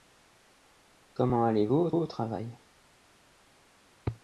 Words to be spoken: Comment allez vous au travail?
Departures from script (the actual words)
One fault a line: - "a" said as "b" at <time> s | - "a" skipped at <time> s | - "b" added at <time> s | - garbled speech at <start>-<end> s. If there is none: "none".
- "au" added at 1.9 s